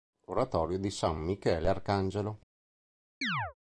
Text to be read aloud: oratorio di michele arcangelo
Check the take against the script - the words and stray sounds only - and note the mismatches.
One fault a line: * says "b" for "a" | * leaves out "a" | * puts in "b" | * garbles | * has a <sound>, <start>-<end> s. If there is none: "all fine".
* puts in "san"
* has a chirp, 3.2-3.5 s